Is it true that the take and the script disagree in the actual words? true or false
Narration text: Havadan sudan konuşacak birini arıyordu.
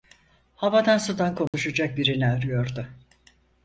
false